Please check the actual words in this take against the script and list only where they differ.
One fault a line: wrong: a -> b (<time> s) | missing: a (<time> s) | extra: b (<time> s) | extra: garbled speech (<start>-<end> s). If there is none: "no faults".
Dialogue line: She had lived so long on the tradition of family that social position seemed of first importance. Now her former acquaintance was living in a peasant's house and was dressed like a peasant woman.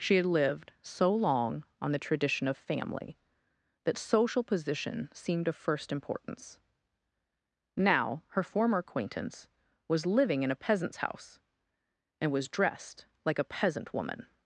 no faults